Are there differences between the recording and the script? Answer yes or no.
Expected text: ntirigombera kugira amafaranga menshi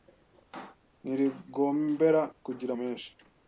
yes